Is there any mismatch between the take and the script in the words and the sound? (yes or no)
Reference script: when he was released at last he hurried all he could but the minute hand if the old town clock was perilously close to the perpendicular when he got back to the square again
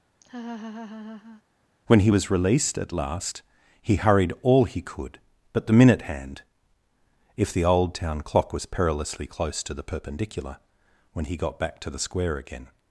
yes